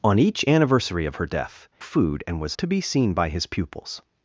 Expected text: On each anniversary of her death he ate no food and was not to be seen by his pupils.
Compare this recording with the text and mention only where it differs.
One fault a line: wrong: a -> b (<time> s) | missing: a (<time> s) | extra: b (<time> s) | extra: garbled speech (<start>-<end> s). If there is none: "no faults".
missing: he ate no (1.7 s)
missing: not (2.6 s)